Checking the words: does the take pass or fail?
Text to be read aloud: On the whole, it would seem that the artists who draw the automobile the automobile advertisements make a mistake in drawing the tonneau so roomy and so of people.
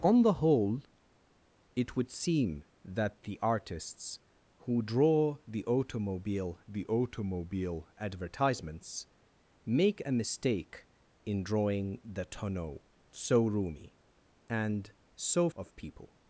pass